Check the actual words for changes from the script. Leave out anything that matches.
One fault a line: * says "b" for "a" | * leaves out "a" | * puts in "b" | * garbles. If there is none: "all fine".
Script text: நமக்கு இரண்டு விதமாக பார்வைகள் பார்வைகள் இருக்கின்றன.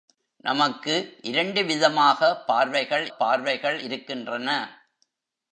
all fine